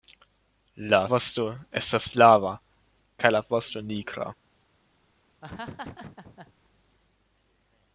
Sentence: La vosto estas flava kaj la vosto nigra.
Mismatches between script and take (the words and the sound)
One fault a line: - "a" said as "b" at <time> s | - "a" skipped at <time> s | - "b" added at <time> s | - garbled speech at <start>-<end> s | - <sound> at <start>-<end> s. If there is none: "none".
- laugh at 5.4-6.5 s